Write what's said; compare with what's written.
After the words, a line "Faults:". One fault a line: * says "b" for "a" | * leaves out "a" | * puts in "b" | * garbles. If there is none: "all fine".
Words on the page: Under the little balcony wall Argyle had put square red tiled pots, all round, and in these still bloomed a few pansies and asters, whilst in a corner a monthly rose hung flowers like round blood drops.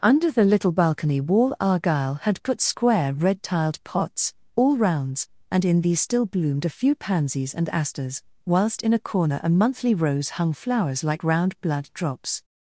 Under the little balcony wall Argyle had put square red tiled pots, all rounds, and in these still bloomed a few pansies and asters, whilst in a corner a monthly rose hung flowers like round blood drops.
Faults:
* says "rounds" for "round"